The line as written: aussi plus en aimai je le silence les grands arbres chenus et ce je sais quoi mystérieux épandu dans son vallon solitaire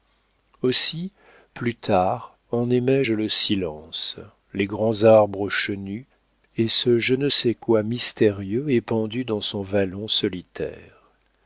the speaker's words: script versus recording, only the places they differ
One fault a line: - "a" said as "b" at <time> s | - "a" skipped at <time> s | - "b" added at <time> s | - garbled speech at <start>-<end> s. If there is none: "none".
- "tard" added at 1.8 s
- "ne" added at 7.2 s